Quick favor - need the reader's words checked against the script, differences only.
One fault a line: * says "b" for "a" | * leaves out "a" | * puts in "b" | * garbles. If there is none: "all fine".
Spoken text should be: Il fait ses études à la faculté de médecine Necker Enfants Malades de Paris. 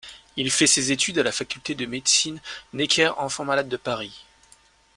all fine